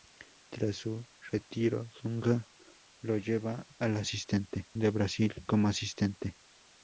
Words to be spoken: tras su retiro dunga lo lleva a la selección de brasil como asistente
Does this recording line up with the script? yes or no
no